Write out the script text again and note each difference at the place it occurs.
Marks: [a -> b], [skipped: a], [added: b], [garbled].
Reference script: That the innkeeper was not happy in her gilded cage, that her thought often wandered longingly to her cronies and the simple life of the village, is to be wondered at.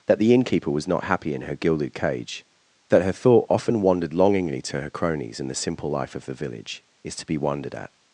That the innkeeper was not happy in her gilded cage, that her thought often wandered longingly to her cronies and the simple life of the village, is to be wondered at.